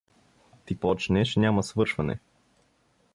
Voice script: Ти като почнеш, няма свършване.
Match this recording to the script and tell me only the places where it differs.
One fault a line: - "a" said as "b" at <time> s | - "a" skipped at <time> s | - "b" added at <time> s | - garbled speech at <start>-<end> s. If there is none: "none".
- "като" skipped at 0.8 s